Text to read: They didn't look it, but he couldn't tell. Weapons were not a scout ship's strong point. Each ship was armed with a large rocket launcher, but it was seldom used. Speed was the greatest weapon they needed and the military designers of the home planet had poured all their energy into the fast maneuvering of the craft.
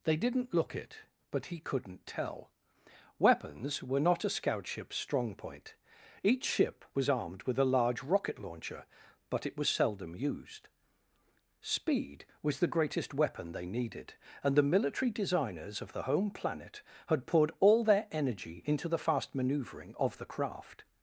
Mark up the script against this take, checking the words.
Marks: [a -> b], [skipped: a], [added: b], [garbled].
They didn't look it, but he couldn't tell. Weapons were not a scout ship's strong point. Each ship was armed with a large rocket launcher, but it was seldom used. Speed was the greatest weapon they needed and the military designers of the home planet had poured all their energy into the fast maneuvering of the craft.